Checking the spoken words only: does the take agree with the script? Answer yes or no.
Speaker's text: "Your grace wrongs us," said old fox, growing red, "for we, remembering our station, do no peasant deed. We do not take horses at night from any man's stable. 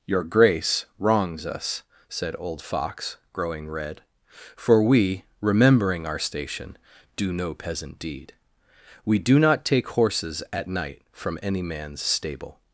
yes